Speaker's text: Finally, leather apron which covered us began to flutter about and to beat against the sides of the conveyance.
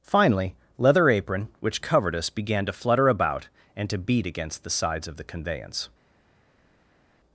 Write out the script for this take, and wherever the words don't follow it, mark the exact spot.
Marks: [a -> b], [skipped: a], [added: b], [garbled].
Finally, leather apron which covered us began to flutter about and to beat against the sides of the conveyance.